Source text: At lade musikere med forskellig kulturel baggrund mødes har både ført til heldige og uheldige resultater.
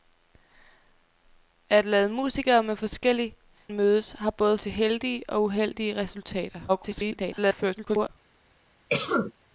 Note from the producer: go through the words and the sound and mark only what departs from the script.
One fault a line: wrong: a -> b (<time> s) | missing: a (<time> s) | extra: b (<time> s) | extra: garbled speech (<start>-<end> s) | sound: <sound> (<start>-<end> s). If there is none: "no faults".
missing: kulturel baggrund (3.4 s)
missing: ført (4.6 s)
extra: garbled speech (6.7-8.1 s)
sound: cough (8.9-9.3 s)